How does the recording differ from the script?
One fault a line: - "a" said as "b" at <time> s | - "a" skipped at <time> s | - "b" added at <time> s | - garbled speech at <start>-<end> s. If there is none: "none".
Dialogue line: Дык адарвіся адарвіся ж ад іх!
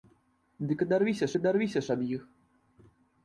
none